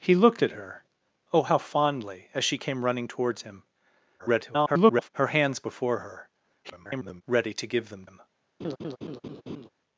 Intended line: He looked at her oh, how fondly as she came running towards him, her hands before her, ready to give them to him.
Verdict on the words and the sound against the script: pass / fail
fail